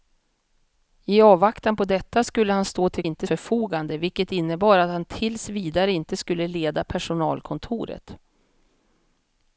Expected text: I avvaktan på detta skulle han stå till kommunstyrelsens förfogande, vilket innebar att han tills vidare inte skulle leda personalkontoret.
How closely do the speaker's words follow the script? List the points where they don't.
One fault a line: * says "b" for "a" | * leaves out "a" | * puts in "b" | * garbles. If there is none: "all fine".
* says "inte" for "kommunstyrelsens"